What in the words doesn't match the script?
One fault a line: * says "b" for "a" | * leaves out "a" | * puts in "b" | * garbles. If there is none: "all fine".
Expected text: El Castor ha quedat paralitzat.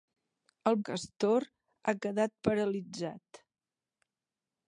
all fine